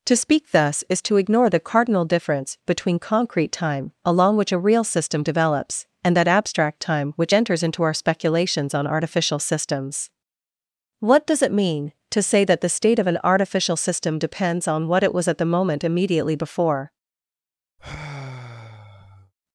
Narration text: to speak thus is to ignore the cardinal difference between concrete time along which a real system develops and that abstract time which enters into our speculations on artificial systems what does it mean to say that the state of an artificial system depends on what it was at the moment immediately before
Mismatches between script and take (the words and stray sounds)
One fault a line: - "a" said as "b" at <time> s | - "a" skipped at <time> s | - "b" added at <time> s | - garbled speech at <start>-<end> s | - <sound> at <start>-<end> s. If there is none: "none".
- sigh at 17.8-19.3 s